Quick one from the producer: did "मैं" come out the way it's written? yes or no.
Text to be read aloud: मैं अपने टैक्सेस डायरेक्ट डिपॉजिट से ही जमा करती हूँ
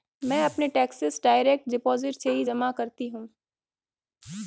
yes